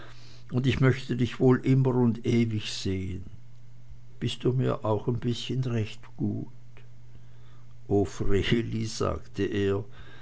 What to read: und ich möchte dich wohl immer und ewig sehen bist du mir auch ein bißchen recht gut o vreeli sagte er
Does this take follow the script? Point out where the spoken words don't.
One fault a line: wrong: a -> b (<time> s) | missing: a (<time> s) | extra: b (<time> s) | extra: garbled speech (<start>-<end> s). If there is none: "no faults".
no faults